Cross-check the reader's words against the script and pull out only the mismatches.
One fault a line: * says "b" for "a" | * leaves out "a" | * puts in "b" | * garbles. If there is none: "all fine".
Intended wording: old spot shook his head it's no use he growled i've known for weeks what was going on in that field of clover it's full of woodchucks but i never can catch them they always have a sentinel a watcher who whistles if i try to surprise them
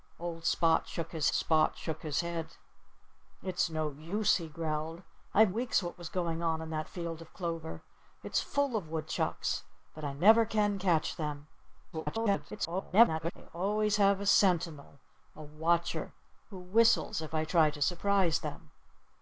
* puts in "spot shook his"
* leaves out "known for"
* garbles